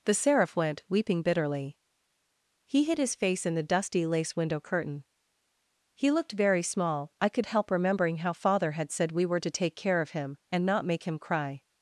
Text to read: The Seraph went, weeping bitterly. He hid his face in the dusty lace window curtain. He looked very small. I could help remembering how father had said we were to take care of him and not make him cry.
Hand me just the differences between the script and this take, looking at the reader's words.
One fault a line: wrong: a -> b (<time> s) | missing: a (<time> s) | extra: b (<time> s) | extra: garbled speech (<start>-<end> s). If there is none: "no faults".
no faults